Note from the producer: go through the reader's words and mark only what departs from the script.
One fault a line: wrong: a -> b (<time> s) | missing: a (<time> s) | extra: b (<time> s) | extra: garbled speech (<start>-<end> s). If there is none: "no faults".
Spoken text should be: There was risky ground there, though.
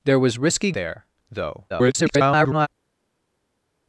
missing: ground (0.7 s)
extra: garbled speech (1.7-2.7 s)